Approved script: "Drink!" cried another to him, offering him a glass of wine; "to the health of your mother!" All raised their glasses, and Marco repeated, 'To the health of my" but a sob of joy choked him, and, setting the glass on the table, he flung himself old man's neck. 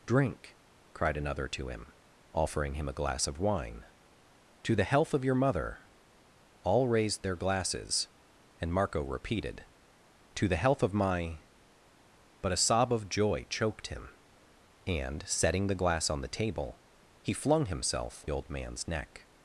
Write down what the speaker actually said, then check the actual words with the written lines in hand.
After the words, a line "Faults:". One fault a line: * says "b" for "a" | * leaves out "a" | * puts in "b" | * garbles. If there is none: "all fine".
"Drink!" cried another to him, offering him a glass of wine; "to the health of your mother!" All raised their glasses, and Marco repeated, 'To the health of my" but a sob of joy choked him, and, setting the glass on the table, he flung himself old man's neck.
Faults:
all fine